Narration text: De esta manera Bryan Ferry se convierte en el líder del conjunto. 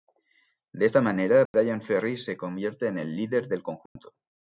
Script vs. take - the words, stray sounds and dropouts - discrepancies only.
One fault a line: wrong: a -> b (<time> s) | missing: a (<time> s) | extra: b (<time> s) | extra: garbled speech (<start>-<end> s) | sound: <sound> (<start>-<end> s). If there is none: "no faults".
sound: dropout (1.5-1.5 s)
sound: dropout (3.9-4.0 s)